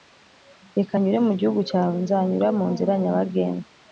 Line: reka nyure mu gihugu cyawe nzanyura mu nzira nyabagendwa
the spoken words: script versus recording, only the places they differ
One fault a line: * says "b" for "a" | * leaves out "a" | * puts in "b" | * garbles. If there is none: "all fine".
all fine